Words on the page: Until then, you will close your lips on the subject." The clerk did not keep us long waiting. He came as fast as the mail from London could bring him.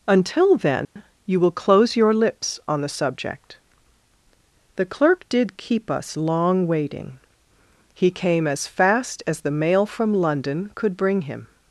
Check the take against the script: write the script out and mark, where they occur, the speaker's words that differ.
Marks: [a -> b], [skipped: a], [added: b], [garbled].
Until then, you will close your lips on the subject." The clerk did [skipped: not] keep us long waiting. He came as fast as the mail from London could bring him.